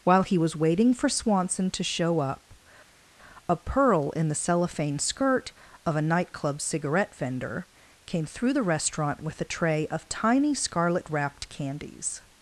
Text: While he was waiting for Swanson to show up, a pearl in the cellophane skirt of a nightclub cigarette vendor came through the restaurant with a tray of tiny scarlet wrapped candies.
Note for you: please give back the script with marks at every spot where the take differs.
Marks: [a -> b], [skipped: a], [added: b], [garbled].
While he was waiting for Swanson to show up, a pearl in the cellophane skirt of a nightclub cigarette vendor came through the restaurant with a tray of tiny scarlet wrapped candies.